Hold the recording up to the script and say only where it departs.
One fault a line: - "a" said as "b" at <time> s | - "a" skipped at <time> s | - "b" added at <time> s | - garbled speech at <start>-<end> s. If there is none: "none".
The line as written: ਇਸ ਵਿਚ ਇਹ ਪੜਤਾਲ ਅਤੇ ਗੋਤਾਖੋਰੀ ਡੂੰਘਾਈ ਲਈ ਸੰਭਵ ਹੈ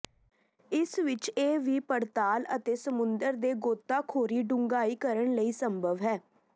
- "ਵੀ" added at 1.6 s
- "ਸਮੁੰਦਰ ਦੇ" added at 2.8 s
- "ਕਰਨ" added at 5.0 s